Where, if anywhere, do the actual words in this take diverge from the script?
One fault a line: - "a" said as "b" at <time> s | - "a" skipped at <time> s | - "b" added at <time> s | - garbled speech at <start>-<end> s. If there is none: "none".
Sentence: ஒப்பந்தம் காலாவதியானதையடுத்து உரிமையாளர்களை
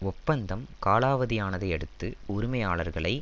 none